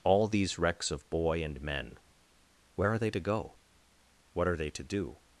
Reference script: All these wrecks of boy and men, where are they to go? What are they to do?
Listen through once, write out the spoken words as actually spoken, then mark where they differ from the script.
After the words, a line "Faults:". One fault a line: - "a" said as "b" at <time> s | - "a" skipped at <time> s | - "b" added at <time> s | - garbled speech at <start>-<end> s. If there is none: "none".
All these wrecks of boy and men, where are they to go? What are they to do?
Faults:
none